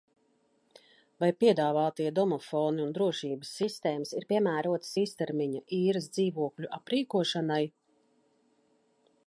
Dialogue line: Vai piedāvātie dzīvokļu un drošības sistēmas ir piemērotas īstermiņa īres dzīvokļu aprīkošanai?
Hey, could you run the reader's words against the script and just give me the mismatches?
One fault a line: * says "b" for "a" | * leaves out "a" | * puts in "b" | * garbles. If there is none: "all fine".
* says "domofoni" for "dzīvokļu"